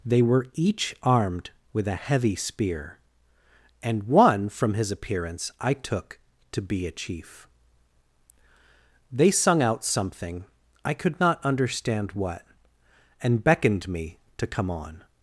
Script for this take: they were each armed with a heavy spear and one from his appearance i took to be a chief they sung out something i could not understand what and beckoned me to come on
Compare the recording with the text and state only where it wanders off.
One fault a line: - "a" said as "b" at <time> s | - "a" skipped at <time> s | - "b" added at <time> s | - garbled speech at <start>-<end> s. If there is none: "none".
none